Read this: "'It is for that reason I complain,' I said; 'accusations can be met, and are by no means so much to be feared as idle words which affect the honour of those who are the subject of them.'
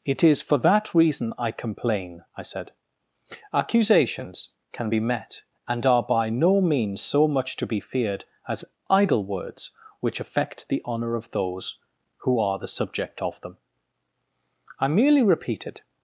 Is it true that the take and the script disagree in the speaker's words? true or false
true